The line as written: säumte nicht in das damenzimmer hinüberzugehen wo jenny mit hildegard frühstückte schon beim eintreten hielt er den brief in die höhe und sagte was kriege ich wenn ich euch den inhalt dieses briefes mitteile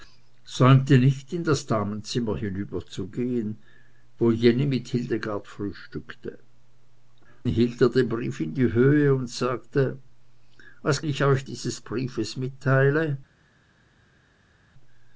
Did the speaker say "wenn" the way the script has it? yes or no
no